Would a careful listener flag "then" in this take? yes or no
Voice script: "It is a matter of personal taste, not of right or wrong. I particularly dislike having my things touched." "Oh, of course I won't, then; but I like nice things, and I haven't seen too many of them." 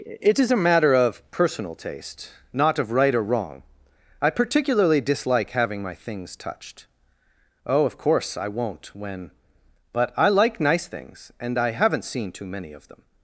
yes